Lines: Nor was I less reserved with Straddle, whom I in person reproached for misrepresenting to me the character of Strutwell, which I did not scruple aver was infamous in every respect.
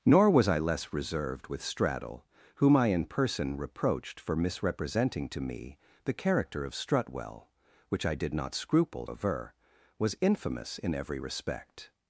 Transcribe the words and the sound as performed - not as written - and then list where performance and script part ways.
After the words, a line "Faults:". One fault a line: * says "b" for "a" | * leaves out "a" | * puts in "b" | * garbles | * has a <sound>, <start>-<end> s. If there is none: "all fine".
Nor was I less reserved with Straddle, whom I in person reproached for misrepresenting to me the character of Strutwell, which I did not scruple aver was infamous in every respect.
Faults:
all fine